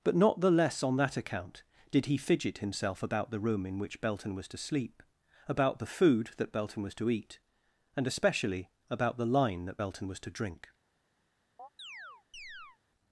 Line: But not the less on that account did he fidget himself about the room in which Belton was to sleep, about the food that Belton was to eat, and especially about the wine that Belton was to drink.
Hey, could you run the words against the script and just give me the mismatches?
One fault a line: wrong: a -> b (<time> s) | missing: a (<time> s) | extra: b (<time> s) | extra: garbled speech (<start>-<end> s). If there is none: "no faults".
wrong: wine -> line (9.3 s)